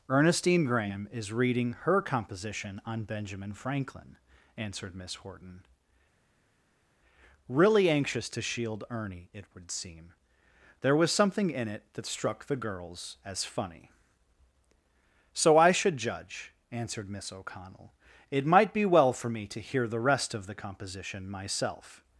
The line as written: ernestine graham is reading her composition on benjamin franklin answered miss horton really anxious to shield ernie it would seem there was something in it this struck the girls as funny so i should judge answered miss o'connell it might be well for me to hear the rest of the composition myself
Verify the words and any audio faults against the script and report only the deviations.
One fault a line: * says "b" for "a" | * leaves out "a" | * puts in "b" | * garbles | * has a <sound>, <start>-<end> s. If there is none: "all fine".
* says "that" for "this"